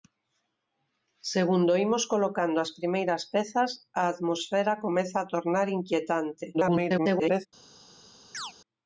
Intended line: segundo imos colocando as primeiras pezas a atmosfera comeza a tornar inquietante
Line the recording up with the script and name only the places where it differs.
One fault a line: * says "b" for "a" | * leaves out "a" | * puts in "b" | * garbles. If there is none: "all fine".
* garbles